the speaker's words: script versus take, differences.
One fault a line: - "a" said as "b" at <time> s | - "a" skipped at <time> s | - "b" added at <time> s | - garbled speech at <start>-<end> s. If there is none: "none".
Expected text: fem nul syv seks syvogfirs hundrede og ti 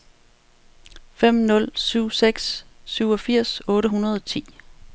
- "otte" added at 3.7 s